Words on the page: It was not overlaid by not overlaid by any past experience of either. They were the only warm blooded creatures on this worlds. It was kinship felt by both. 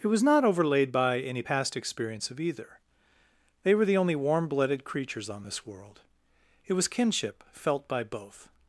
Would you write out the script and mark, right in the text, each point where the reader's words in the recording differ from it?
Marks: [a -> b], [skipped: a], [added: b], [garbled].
It was not overlaid by [skipped: not overlaid by] any past experience of either. They were the only warm blooded creatures on this [worlds. -> world] It was kinship felt by both.